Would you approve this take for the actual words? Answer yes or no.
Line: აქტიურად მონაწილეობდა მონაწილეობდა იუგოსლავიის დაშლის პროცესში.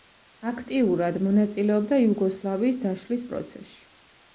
no